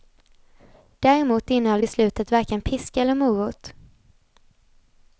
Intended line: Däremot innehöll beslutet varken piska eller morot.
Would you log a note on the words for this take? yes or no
no